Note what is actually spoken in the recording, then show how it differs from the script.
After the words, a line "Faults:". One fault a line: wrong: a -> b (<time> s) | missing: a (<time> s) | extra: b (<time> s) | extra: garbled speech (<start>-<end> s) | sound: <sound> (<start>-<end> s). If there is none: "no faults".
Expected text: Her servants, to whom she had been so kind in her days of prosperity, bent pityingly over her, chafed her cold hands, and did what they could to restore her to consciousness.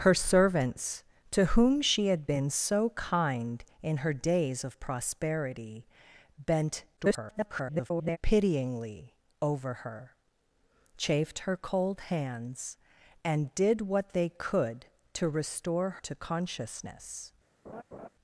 Her servants, to whom she had been so kind in her days of prosperity, bent [garbled] pityingly over her, chafed her cold hands, and did what they could to restore to consciousness.
Faults:
extra: garbled speech (7.0-8.2 s)
missing: her (15.9 s)
sound: laugh (17.7-18.1 s)